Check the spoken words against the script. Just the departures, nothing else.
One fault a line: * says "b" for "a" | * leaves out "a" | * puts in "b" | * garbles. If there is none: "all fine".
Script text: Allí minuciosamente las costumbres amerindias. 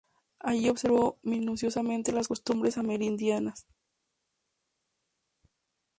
* puts in "observó"